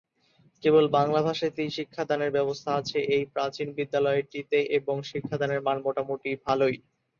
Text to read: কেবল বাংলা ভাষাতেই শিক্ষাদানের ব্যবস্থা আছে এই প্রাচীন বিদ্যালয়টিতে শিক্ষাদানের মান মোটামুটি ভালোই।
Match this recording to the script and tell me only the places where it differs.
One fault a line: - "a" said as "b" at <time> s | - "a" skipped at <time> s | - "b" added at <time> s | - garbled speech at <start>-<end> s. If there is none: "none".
- "এবং" added at 4.8 s